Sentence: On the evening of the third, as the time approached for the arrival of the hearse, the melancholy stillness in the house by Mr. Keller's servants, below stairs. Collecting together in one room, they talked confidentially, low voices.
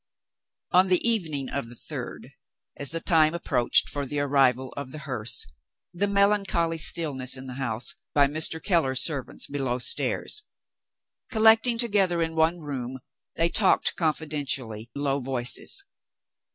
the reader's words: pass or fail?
pass